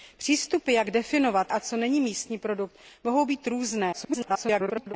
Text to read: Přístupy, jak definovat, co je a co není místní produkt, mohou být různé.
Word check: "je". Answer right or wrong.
wrong